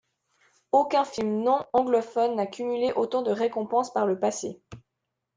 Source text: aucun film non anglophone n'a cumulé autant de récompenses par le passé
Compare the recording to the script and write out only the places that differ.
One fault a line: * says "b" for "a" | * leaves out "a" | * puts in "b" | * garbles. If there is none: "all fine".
all fine